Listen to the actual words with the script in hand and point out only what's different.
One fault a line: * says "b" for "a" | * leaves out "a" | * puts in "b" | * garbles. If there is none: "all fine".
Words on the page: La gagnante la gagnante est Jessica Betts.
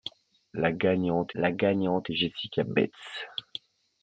all fine